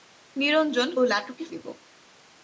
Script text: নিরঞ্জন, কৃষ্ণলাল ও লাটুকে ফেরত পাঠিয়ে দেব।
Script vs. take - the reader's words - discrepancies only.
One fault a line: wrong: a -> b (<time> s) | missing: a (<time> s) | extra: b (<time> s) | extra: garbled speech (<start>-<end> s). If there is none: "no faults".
missing: কৃষ্ণলাল (0.9 s)
missing: ফেরত পাঠিয়ে (1.4 s)